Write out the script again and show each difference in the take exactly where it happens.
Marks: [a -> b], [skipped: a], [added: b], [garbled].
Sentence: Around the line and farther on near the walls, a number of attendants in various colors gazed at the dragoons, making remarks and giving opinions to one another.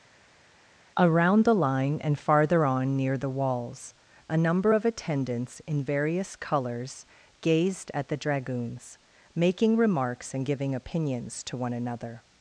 Around the line and farther on near the walls, a number of attendants in various colors gazed at the dragoons, making remarks and giving opinions to one another.